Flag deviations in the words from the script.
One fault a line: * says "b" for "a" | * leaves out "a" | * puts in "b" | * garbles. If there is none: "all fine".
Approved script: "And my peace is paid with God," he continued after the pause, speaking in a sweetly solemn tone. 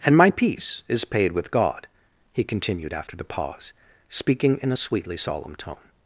all fine